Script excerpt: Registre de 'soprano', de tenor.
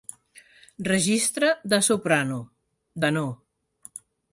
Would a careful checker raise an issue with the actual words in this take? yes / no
yes